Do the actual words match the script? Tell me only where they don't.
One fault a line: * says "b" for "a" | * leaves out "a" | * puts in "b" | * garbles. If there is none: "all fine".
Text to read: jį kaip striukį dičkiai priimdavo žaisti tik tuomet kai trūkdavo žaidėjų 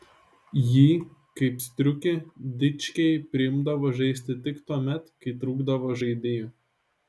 all fine